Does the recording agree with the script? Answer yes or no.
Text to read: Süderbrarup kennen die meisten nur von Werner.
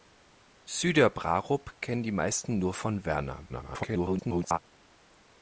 no